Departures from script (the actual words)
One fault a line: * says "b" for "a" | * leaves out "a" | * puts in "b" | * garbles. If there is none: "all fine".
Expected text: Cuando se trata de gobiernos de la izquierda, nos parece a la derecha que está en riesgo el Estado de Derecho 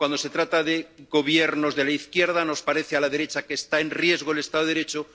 all fine